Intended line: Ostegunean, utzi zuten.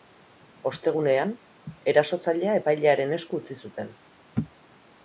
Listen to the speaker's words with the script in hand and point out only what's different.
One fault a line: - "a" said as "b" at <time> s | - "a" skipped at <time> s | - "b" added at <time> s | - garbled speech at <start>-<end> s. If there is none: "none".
- "erasotzailea epailearen esku" added at 1.9 s